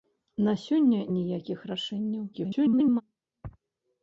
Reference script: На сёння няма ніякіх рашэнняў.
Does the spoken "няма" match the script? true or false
false